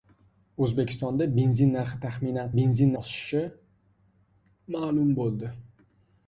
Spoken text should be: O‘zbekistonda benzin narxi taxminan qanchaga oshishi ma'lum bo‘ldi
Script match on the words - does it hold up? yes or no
no